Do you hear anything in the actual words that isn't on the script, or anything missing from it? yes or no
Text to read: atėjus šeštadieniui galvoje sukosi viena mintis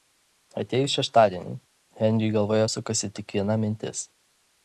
yes